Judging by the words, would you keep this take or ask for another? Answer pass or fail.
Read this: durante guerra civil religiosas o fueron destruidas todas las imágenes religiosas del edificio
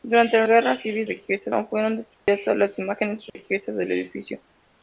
pass